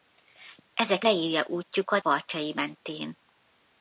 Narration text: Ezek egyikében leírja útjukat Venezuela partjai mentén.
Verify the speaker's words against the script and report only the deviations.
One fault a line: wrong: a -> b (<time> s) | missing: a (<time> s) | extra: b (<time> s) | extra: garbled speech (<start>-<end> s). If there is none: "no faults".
missing: egyikében (1.1 s)
missing: Venezuela (2.0 s)